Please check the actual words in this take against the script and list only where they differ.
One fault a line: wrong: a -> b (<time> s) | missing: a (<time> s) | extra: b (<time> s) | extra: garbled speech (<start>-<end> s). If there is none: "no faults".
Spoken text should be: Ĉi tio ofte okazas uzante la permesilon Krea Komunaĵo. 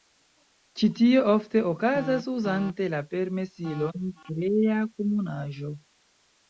no faults